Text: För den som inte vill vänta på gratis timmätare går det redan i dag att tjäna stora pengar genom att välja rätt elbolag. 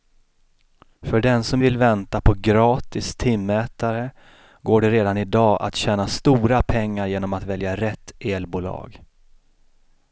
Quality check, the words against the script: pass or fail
fail